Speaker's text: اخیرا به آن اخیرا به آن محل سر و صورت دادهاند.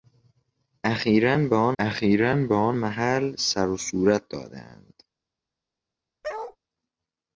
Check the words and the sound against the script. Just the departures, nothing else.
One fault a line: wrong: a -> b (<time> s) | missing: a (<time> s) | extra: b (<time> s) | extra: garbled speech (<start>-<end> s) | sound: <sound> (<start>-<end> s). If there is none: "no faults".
sound: bark (6.2-6.6 s)